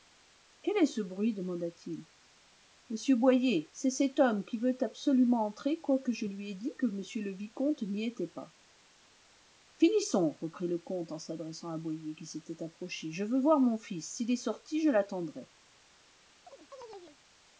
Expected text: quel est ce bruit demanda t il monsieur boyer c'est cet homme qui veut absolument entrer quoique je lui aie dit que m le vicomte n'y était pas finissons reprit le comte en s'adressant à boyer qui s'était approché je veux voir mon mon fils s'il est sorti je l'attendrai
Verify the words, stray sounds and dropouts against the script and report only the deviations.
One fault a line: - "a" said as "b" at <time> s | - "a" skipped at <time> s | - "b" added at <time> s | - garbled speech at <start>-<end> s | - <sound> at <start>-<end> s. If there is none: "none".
- "mon" skipped at 13.8 s
- chirp at 16.5-17.2 s